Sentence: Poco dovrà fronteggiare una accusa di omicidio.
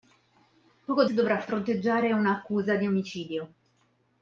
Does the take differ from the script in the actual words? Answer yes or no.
no